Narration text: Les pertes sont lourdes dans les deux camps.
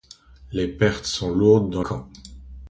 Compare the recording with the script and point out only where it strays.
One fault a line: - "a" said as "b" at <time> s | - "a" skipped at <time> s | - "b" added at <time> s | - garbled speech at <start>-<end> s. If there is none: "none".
- "les deux" skipped at 1.8 s